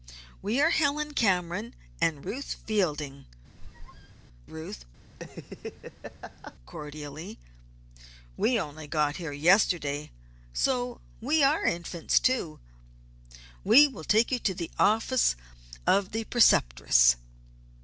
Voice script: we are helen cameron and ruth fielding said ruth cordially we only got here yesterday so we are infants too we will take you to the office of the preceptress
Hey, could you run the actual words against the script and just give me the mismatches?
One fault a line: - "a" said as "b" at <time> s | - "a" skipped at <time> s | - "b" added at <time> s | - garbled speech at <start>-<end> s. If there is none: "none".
- "said" skipped at 3.3 s